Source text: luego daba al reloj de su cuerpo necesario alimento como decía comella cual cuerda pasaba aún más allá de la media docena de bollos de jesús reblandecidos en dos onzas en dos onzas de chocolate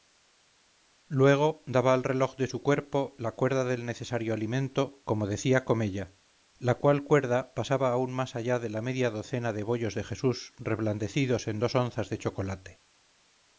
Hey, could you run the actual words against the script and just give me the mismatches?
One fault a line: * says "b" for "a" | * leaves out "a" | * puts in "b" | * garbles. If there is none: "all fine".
* puts in "la cuerda del"
* puts in "la"
* leaves out "en dos onzas"